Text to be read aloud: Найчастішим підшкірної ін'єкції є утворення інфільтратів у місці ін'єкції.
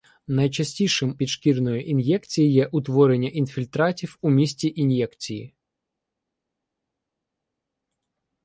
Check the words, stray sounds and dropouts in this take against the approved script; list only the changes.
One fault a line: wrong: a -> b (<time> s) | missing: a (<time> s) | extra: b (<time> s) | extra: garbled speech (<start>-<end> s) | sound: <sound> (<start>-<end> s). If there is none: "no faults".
no faults